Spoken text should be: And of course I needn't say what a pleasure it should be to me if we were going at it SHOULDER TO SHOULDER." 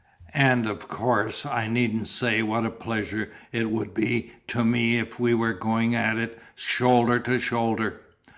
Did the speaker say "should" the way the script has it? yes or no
no